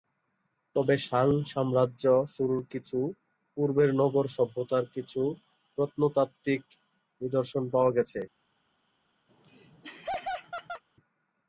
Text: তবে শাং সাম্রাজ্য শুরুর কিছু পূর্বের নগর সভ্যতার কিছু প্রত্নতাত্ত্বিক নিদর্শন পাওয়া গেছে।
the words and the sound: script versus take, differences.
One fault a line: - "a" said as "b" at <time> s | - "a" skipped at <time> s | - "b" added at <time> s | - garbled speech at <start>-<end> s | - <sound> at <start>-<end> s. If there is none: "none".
- laugh at 9.3-10.8 s